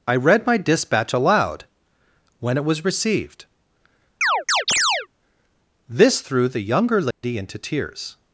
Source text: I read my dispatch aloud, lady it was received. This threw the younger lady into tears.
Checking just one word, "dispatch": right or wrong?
right